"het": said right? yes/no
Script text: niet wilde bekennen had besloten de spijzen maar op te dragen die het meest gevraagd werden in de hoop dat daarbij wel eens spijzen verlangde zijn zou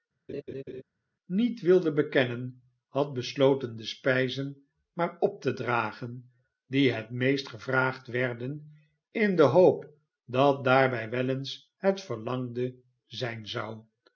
yes